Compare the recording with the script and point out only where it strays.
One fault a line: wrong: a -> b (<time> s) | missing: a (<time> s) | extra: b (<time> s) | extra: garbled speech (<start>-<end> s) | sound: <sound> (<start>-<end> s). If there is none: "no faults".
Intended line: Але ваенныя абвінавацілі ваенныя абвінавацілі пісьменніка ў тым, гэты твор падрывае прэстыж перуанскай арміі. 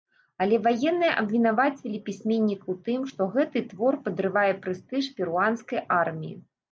missing: ваенныя абвінавацілі (2.0 s)
extra: што (3.1 s)